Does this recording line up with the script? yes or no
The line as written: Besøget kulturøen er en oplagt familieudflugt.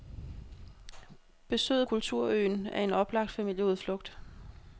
yes